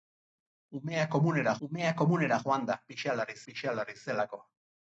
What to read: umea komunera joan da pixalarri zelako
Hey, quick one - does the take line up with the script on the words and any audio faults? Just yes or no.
no